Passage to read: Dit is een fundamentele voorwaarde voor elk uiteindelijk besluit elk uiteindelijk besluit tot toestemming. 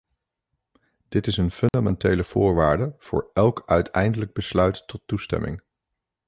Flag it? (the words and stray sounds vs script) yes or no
yes